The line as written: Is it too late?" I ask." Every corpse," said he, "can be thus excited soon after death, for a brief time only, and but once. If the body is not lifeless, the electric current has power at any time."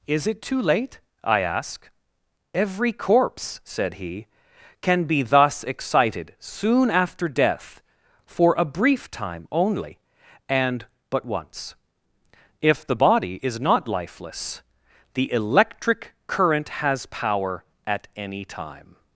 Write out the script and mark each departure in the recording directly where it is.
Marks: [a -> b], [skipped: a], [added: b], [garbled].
Is it too late?" I ask." Every corpse," said he, "can be thus excited soon after death, for a brief time only, and but once. If the body is not lifeless, the electric current has power at any time."